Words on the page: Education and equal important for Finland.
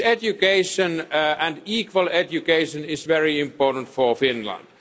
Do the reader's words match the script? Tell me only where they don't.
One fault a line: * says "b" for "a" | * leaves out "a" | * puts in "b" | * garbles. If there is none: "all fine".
* puts in "education is very"